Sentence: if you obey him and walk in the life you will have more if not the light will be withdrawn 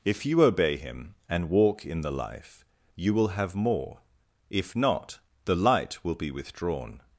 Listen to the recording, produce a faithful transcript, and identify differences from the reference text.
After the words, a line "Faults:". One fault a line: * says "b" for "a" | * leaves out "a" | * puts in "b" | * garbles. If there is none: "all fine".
if you obey him and walk in the life you will have more if not the light will be withdrawn
Faults:
all fine